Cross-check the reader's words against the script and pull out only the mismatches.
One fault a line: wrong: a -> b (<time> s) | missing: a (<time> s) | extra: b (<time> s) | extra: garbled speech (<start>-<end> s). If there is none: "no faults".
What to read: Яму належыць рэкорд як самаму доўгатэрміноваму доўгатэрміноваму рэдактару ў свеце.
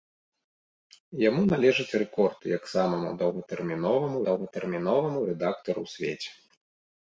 no faults